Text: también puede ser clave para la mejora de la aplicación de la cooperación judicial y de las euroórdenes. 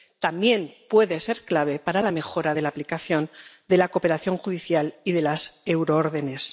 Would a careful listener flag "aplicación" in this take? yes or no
no